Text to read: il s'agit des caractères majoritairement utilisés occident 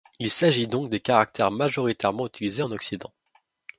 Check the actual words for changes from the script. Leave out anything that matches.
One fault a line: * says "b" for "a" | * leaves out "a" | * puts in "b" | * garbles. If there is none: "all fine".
* puts in "donc"
* puts in "en"